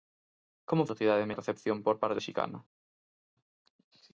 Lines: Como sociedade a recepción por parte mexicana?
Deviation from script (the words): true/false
false